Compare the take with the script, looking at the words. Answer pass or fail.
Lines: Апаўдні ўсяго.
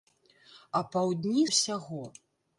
pass